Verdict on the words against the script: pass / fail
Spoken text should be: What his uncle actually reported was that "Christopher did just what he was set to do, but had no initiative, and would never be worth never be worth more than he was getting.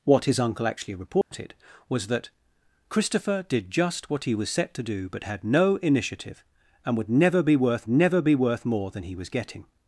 pass